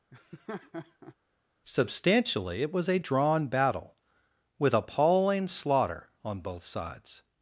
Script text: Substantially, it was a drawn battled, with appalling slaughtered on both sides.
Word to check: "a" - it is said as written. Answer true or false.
true